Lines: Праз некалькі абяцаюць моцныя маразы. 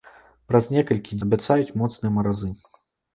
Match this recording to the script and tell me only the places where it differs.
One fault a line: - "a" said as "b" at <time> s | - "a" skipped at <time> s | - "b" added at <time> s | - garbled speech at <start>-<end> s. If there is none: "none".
none